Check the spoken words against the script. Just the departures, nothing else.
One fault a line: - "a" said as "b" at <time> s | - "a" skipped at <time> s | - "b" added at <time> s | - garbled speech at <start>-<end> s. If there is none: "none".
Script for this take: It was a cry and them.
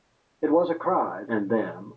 none